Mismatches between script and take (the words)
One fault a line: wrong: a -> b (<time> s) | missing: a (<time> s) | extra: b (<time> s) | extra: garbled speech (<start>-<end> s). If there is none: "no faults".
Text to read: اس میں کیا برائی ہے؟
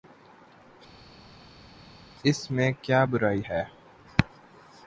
no faults